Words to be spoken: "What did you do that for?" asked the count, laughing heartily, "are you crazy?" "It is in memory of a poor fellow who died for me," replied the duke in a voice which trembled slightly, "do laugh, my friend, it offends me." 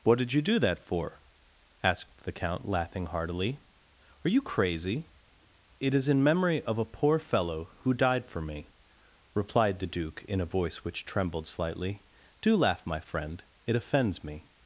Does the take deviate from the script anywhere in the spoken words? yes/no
no